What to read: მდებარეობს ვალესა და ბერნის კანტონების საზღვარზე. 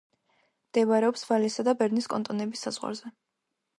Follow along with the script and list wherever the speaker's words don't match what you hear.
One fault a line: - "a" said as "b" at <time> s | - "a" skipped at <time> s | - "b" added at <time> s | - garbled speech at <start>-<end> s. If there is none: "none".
none